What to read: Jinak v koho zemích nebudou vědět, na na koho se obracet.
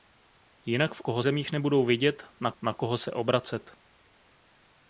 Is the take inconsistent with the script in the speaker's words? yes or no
no